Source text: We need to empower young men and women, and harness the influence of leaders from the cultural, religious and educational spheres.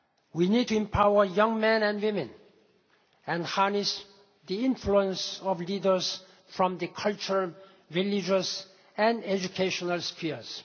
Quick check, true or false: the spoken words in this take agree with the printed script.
true